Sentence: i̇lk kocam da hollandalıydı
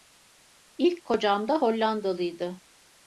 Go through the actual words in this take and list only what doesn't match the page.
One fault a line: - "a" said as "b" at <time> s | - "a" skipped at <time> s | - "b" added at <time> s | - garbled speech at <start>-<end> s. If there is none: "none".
none